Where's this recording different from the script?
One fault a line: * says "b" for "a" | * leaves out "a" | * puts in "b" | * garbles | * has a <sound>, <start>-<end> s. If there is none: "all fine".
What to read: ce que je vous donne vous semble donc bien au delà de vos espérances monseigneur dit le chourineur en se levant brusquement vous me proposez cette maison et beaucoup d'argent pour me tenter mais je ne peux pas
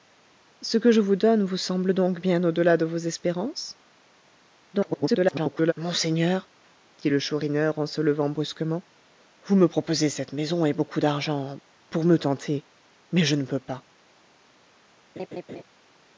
* garbles
* has a laugh, 15.2-15.6 s